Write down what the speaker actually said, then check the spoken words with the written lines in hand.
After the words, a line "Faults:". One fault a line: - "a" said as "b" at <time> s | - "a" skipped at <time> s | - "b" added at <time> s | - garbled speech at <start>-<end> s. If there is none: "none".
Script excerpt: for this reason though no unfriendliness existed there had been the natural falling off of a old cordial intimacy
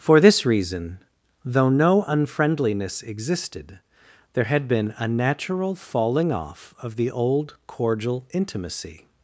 for this reason though no unfriendliness existed there had been a natural falling off of the old cordial intimacy
Faults:
- "the" said as "a" at 5.0 s
- "a" said as "the" at 7.0 s